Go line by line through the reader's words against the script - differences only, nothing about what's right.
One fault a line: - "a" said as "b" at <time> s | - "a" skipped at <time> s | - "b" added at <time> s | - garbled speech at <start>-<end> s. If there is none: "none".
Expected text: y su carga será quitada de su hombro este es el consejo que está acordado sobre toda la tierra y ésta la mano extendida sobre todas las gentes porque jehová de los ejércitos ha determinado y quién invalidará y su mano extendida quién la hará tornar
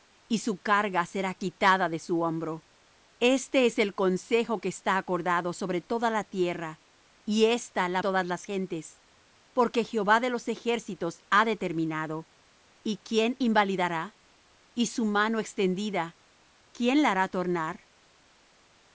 - "mano extendida sobre" skipped at 8.0 s